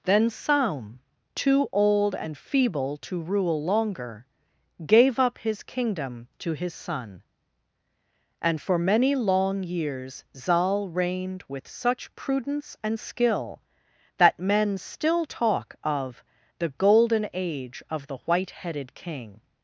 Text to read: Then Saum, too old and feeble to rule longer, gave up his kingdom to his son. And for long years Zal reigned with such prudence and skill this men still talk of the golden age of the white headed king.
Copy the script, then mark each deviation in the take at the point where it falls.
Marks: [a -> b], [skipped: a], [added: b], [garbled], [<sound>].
Then Saum, too old and feeble to rule longer, gave up his kingdom to his son. And for [added: many] long years Zal reigned with such prudence and skill [this -> that] men still talk of the golden age of the white headed king.